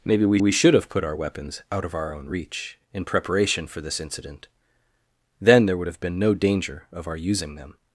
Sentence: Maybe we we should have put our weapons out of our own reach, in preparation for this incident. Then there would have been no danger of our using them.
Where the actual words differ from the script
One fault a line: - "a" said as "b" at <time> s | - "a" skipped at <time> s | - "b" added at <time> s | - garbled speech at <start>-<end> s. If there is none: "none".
none